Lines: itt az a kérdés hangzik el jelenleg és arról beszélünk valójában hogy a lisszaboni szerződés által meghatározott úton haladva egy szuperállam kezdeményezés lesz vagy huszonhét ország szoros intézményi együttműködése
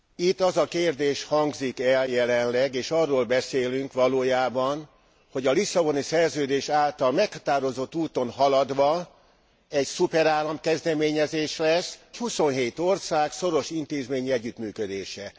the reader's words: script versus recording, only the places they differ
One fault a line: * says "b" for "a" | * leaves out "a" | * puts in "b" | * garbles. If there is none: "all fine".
* leaves out "vagy"